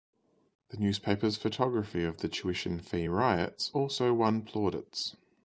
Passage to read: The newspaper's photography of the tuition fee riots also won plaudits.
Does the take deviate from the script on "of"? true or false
false